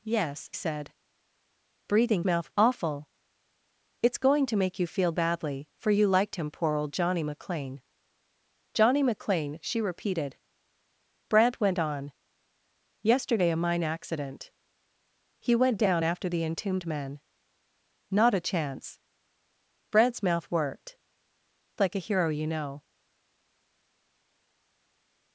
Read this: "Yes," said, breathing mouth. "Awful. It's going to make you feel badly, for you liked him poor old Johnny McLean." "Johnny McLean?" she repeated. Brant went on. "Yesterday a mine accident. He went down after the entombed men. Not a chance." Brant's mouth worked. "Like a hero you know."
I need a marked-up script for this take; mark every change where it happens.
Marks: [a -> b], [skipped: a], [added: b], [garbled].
"Yes," said, breathing mouth. "Awful. It's going to make you feel badly, for you liked him poor old Johnny McLean." "Johnny McLean?" she repeated. Brant went on. "Yesterday a mine accident. He went down after the entombed men. Not a chance." Brant's mouth worked. "Like a hero you know."